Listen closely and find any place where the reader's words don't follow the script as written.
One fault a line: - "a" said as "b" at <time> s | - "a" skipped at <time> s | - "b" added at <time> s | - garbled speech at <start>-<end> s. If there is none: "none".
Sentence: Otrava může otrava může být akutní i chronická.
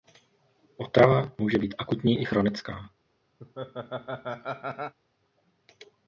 - "otrava může" skipped at 1.6 s